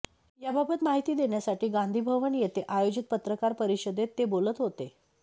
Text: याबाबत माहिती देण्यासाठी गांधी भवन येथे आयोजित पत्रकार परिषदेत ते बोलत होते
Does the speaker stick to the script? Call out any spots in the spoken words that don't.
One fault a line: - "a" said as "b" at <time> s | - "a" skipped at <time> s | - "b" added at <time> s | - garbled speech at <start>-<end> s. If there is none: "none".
none